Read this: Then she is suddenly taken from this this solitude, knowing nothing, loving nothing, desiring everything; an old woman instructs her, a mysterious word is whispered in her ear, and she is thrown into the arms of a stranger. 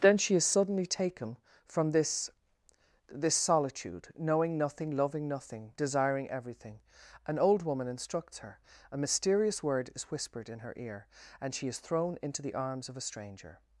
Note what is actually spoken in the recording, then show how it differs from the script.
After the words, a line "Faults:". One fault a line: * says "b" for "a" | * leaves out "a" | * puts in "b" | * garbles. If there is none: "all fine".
Then she is suddenly taken from this this solitude, knowing nothing, loving nothing, desiring everything; an old woman instructs her, a mysterious word is whispered in her ear, and she is thrown into the arms of a stranger.
Faults:
all fine